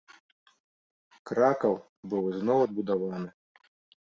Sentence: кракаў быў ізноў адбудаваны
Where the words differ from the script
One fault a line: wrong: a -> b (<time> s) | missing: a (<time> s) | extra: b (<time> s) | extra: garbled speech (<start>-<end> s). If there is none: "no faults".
no faults